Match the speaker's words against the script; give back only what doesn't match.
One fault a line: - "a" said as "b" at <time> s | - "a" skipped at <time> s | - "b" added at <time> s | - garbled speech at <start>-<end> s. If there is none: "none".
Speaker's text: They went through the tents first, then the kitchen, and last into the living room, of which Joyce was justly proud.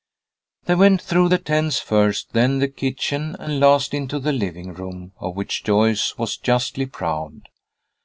none